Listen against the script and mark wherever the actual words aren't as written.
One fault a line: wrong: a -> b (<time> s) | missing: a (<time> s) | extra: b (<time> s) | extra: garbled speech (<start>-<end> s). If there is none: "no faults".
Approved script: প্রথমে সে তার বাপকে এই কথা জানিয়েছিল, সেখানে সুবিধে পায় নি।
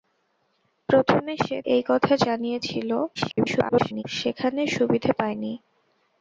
missing: তার বাপকে (1.6 s)
extra: garbled speech (3.2-4.0 s)